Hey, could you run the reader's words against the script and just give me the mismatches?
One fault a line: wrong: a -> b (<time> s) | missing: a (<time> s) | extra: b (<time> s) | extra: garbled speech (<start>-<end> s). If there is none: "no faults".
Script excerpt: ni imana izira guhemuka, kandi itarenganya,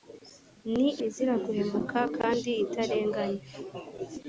missing: imana (0.9 s)